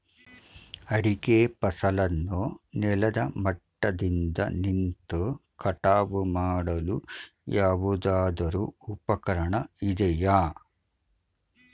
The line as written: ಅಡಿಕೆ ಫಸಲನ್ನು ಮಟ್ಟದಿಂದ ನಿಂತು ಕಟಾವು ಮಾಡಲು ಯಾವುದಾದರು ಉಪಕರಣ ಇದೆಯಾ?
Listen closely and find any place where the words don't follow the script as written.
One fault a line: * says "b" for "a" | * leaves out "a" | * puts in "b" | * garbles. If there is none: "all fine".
* puts in "ನೆಲದ"